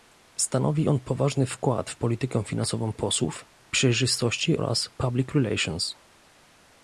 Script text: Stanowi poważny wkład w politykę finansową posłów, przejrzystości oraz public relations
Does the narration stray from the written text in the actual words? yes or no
yes